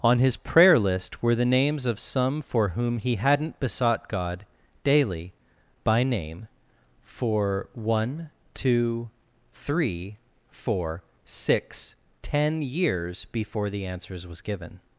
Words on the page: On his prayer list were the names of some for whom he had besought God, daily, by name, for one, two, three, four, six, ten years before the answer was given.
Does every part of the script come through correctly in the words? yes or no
no